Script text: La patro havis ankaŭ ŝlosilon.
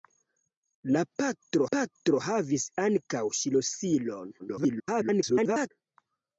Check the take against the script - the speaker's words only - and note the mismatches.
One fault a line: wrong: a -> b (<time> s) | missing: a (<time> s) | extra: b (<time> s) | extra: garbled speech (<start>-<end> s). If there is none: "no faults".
extra: patro (1.7 s)
extra: garbled speech (4.4-5.7 s)